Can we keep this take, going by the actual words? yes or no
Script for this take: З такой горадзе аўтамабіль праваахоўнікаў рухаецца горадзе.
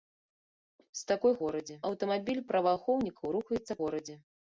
yes